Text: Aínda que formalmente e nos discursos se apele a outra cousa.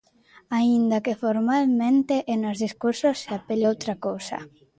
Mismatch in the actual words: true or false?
false